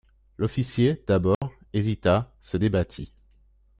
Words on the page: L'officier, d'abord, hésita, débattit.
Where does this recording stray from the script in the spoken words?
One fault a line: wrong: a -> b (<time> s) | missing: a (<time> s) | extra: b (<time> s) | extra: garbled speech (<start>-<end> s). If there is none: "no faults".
extra: se (2.4 s)